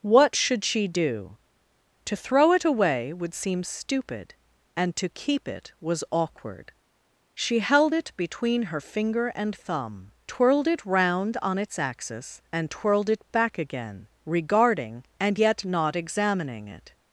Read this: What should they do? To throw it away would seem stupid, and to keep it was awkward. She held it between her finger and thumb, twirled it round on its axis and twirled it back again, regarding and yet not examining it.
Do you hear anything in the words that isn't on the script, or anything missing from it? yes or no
yes